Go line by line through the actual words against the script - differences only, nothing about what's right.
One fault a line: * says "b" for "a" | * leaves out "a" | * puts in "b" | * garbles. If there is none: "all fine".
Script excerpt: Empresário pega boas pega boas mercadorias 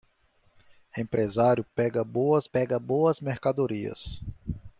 all fine